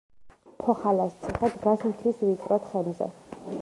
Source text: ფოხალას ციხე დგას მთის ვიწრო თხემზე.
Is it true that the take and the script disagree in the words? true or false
false